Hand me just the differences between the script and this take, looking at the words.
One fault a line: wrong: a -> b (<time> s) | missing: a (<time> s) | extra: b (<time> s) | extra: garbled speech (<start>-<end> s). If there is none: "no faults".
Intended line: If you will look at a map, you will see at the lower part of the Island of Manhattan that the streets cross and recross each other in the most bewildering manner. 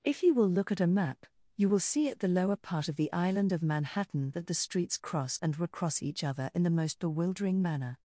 no faults